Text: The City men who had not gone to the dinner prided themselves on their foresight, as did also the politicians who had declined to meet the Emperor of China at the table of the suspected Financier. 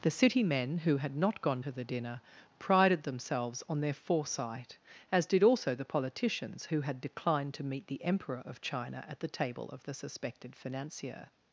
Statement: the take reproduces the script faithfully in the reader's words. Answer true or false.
true